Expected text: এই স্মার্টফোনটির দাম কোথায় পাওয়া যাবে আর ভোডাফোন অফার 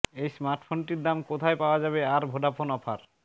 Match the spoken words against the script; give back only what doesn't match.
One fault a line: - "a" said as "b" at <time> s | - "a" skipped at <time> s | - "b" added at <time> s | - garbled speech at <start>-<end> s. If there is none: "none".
none